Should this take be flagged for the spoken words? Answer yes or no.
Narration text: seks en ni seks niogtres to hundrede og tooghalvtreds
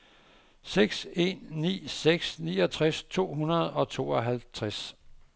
no